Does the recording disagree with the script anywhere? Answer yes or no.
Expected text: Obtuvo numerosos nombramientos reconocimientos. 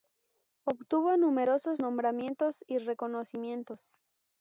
yes